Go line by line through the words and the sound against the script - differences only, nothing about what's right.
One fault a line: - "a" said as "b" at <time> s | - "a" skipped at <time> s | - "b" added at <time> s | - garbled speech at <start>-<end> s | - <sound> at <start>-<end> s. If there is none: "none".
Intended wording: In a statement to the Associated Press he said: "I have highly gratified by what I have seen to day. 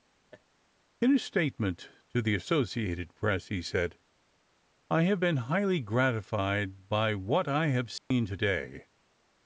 - laugh at 0.3-0.4 s
- "been" added at 5.2 s
- dropout at 8.0-8.1 s